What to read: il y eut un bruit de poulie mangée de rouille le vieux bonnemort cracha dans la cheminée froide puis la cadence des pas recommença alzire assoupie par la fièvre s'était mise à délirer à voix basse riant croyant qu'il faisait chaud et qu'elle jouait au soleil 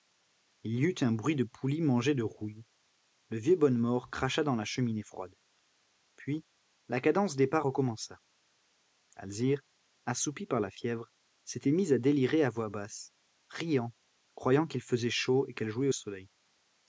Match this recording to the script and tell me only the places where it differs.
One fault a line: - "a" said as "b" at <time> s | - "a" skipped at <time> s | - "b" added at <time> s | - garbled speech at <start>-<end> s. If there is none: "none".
none